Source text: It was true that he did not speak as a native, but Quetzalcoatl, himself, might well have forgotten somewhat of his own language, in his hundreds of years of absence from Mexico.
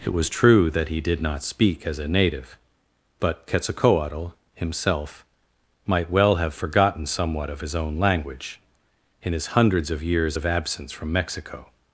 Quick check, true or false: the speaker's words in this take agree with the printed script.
true